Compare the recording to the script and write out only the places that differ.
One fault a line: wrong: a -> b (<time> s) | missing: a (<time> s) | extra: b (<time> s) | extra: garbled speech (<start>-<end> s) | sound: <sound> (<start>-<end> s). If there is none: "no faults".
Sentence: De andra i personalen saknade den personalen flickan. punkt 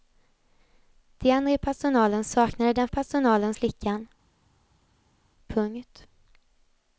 no faults